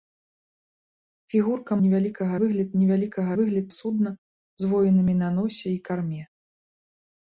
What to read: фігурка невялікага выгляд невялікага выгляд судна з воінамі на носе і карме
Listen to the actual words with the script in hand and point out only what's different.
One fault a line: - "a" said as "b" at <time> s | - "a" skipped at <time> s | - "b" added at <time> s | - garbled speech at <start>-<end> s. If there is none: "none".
none